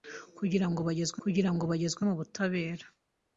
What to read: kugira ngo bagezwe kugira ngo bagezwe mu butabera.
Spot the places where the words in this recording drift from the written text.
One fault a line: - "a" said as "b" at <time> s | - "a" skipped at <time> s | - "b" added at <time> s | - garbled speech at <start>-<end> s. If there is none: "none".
none